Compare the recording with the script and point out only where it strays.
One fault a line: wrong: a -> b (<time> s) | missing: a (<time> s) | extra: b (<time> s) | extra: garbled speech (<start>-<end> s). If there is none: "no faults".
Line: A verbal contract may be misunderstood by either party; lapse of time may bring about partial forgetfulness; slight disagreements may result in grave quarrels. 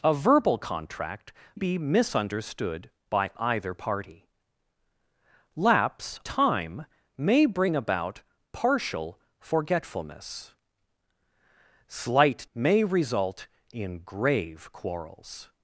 missing: may (1.3 s)
missing: of (6.2 s)
missing: disagreements (12.5 s)